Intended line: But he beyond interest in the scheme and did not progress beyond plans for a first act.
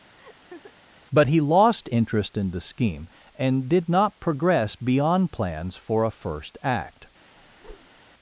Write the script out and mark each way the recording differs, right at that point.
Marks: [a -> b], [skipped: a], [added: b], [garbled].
But he [beyond -> lost] interest in the scheme and did not progress beyond plans for a first act.